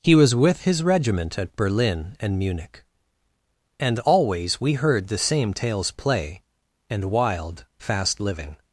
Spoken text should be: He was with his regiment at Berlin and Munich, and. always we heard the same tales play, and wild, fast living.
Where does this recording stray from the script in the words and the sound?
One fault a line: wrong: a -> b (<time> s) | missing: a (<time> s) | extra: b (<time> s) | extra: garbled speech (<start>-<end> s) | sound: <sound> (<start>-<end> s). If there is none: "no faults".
no faults